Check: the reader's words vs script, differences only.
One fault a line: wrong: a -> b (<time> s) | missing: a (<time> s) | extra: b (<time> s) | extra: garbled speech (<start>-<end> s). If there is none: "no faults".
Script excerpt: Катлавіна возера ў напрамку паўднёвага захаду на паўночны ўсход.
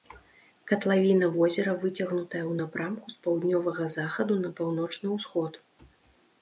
extra: выцягнутая (1.8 s)
extra: з (3.1 s)